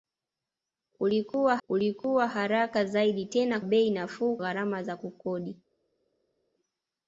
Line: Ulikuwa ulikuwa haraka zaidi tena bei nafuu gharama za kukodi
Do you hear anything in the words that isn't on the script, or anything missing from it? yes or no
no